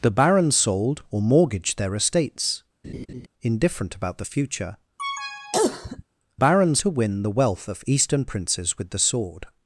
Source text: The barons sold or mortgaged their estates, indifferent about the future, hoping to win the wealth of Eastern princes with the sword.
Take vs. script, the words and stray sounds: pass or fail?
fail